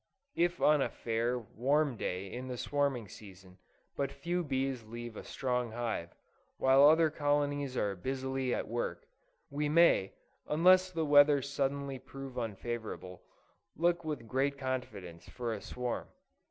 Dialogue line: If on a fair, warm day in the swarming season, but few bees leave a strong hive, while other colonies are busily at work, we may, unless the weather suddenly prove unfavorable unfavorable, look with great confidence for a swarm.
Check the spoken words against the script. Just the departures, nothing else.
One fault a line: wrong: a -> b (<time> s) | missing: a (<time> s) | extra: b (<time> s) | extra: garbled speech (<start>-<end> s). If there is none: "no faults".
missing: unfavorable (13.2 s)